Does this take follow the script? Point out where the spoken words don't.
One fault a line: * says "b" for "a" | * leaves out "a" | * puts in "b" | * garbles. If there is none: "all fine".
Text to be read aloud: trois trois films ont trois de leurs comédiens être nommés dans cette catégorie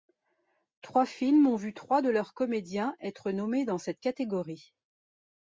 * leaves out "trois"
* puts in "vu"